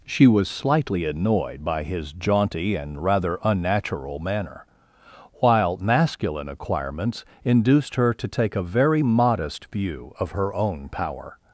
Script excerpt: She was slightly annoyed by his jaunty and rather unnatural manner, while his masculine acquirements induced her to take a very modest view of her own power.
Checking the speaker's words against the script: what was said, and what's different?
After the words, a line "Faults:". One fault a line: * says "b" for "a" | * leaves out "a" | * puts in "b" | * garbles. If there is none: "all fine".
She was slightly annoyed by his jaunty and rather unnatural manner, while masculine acquirements induced her to take a very modest view of her own power.
Faults:
* leaves out "his"